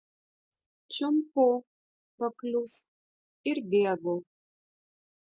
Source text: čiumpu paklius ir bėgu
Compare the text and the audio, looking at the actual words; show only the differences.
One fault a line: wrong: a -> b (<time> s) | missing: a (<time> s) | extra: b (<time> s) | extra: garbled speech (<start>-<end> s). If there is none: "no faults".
no faults